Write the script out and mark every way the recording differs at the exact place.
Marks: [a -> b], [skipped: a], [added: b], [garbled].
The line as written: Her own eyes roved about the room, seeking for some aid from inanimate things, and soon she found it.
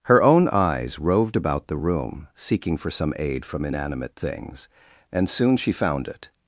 Her own eyes roved about the room, seeking for some aid from inanimate things, and soon she found it.